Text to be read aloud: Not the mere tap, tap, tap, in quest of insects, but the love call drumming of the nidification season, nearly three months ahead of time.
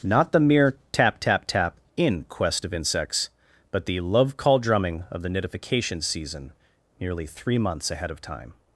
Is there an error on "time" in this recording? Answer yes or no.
no